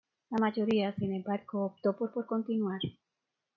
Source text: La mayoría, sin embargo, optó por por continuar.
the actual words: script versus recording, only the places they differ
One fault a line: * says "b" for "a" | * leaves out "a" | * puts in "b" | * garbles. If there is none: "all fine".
all fine